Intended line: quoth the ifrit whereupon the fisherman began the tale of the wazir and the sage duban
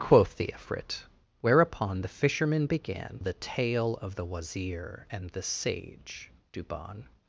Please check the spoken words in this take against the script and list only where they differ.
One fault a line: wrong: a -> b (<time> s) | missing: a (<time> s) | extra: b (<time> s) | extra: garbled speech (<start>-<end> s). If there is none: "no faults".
no faults